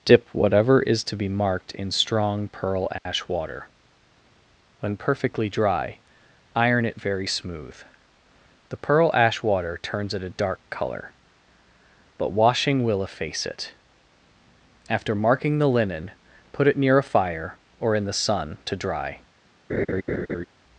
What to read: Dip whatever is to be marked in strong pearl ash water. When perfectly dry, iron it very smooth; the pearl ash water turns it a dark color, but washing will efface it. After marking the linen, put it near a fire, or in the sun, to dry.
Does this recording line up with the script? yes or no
yes